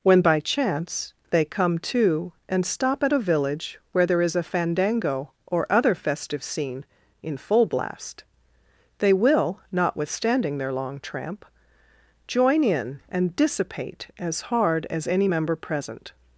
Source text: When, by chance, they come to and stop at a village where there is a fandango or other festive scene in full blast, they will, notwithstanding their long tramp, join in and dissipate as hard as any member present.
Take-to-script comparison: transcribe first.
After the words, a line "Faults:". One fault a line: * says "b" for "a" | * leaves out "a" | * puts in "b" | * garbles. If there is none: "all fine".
When, by chance, they come to and stop at a village where there is a fandango or other festive scene in full blast, they will, notwithstanding their long tramp, join in and dissipate as hard as any member present.
Faults:
all fine